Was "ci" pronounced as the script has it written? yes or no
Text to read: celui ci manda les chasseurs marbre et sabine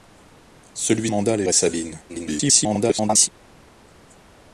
no